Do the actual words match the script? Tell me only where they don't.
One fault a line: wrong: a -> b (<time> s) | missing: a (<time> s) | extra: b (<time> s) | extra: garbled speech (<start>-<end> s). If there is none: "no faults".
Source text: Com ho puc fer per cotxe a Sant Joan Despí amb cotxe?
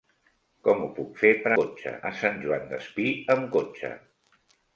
no faults